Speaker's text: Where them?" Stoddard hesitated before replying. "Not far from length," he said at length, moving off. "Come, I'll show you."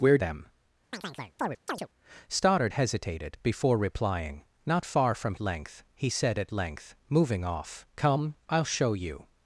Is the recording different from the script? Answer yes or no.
no